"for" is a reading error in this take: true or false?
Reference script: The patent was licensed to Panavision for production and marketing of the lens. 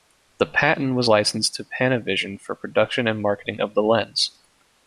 false